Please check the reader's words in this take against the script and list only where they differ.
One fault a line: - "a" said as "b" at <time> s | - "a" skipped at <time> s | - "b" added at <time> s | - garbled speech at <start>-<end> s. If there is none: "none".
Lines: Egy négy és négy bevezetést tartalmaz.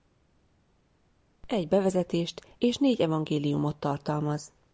- "négy" said as "bevezetést" at 1.7 s
- "bevezetést" said as "evangéliumot" at 3.0 s